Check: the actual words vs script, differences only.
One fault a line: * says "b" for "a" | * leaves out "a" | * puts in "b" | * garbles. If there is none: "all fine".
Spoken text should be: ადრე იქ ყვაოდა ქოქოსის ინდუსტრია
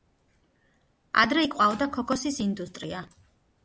all fine